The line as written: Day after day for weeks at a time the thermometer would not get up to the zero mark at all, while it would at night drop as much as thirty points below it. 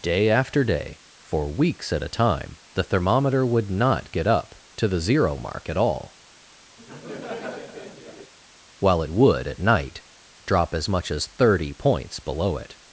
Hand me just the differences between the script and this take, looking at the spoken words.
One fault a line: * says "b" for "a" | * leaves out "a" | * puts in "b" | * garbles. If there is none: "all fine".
all fine